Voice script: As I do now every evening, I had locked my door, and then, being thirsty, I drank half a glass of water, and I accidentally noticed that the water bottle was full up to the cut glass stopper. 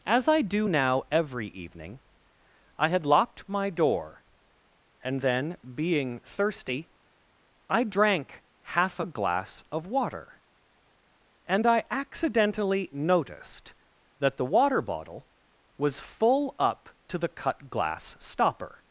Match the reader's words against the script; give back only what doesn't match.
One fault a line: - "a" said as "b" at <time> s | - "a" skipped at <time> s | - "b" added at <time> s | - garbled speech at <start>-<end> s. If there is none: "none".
none